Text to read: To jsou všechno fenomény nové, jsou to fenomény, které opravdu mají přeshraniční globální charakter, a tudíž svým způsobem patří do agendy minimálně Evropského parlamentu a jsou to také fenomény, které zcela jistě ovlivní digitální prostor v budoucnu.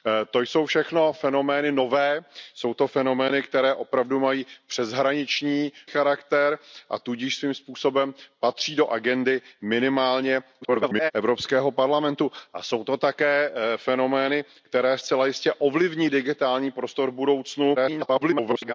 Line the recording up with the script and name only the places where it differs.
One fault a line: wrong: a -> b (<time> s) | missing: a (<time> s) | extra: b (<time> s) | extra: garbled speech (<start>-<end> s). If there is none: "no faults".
missing: globální (5.7 s)
extra: garbled speech (10.6-11.1 s)
extra: garbled speech (17.7-18.7 s)